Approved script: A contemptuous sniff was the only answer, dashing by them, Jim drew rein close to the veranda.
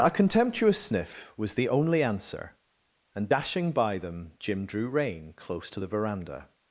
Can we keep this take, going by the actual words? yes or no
no